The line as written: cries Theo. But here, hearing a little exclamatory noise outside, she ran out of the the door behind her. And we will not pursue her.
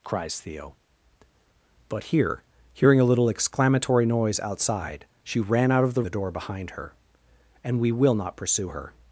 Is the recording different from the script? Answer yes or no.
no